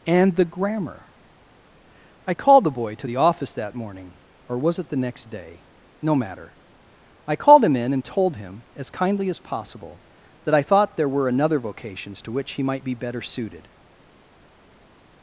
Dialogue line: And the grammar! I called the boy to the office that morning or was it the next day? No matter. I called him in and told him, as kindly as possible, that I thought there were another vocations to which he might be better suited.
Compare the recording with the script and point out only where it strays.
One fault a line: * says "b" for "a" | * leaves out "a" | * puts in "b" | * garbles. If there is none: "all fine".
all fine